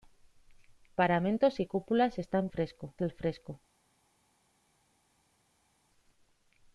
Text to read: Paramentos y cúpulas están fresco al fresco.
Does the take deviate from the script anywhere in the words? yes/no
no